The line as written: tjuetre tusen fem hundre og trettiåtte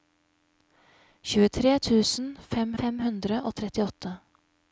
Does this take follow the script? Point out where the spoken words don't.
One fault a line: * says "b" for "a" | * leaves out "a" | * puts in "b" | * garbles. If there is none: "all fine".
* puts in "fem"